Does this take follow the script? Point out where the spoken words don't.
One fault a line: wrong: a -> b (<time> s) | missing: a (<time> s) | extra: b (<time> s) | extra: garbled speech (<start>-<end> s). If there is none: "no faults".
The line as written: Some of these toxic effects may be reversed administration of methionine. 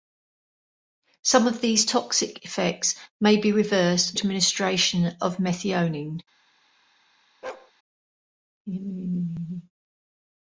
no faults